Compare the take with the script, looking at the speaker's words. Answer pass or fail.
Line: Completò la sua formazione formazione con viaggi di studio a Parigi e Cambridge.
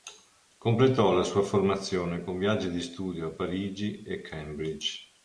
fail